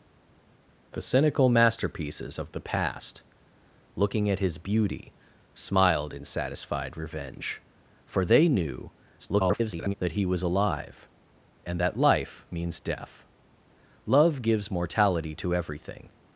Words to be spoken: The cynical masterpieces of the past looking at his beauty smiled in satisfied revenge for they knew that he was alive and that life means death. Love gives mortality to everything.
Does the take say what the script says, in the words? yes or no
no